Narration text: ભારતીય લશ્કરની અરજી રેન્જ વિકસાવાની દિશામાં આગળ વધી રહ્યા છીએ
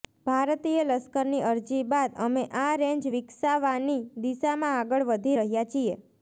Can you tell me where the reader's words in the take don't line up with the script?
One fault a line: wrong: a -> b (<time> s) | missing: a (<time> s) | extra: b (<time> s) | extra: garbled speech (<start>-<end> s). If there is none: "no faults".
extra: બાદ અમે આ (1.9 s)